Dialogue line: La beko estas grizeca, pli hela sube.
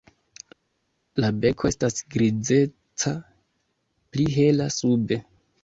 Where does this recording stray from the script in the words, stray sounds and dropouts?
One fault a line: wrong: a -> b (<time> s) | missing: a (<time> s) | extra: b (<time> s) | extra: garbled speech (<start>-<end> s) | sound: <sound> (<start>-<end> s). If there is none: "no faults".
no faults